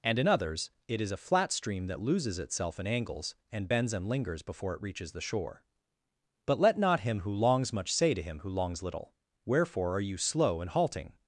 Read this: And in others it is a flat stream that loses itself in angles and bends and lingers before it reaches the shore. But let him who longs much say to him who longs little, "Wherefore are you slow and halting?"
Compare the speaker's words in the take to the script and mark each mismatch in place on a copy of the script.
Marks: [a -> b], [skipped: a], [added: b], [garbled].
And in others it is a flat stream that loses itself in angles and bends and lingers before it reaches the shore. But let [added: not] him who longs much say to him who longs little, "Wherefore are you slow and halting?"